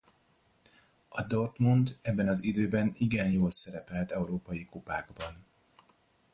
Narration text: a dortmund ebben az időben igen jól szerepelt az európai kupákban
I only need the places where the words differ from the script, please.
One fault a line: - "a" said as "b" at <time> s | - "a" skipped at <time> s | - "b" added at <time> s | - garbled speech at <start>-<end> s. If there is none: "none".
- "az" skipped at 4.1 s